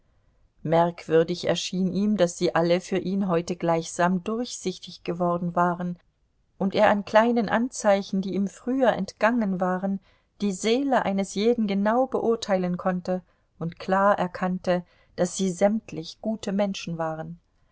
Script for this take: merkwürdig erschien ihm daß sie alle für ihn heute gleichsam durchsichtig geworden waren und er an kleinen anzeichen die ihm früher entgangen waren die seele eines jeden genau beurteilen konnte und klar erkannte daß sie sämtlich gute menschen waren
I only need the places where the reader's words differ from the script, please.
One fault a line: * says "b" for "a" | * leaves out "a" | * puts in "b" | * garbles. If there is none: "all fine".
all fine